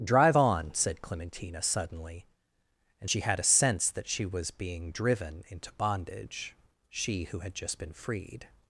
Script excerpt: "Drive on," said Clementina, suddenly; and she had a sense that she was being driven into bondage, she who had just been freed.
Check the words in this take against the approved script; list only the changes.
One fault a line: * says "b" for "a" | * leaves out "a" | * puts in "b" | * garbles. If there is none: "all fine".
all fine